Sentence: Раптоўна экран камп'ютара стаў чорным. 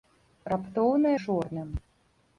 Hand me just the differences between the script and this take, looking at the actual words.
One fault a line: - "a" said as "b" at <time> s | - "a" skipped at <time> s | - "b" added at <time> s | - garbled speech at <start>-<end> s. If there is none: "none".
- "экран камп'ютара стаў" skipped at 1.1 s